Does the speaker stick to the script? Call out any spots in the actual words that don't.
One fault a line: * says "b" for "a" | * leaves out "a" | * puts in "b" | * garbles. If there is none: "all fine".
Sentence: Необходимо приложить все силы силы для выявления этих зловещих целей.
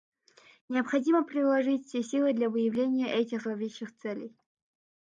* leaves out "силы"